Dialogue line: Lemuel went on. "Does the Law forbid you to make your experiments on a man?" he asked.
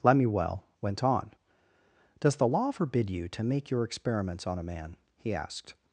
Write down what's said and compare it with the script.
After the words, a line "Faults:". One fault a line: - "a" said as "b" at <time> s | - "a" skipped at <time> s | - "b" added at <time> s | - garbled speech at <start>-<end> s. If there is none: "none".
Lemuel went on. "Does the Law forbid you to make your experiments on a man?" he asked.
Faults:
none